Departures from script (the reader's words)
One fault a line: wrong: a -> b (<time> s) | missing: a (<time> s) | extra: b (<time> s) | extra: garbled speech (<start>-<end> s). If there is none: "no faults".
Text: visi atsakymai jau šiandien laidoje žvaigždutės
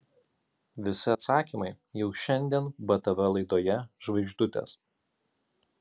extra: btv (2.9 s)